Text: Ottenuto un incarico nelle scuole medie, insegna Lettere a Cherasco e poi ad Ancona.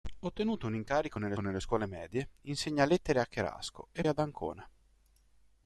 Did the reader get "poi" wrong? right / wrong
wrong